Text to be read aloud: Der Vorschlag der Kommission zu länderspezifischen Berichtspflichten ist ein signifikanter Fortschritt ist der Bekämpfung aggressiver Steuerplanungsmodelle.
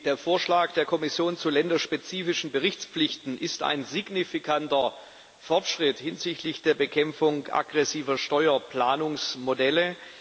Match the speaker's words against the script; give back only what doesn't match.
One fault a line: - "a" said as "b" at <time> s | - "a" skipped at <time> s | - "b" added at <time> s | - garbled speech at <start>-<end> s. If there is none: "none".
- "ist" said as "hinsichtlich" at 6.0 s